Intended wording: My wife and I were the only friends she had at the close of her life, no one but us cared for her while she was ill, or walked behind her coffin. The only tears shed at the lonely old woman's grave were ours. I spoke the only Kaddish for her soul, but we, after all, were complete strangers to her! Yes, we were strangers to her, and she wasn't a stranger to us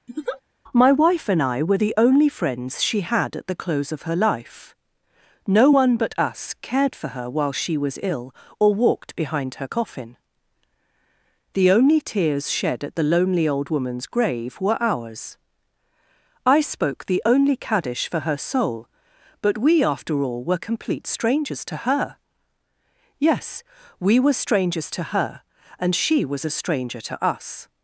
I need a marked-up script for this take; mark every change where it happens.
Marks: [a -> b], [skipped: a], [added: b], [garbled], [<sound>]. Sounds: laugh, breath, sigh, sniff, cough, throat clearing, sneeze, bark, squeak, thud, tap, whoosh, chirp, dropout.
[laugh] My wife and I were the only friends she had at the close of her life, no one but us cared for her while she was ill, or walked behind her coffin. The only tears shed at the lonely old woman's grave were ours. I spoke the only Kaddish for her soul, but we, after all, were complete strangers to her! Yes, we were strangers to her, and she [wasn't -> was] a stranger to us